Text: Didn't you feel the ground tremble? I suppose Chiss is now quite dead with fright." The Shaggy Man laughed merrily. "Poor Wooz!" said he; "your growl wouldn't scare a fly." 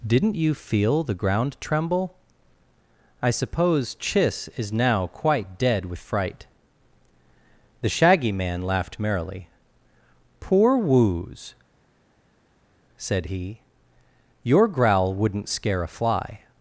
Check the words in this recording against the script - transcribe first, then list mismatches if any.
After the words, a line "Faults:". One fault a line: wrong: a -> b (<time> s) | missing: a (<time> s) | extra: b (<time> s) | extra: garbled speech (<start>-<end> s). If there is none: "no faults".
Didn't you feel the ground tremble? I suppose Chiss is now quite dead with fright." The Shaggy Man laughed merrily. "Poor Wooz!" said he; "your growl wouldn't scare a fly."
Faults:
no faults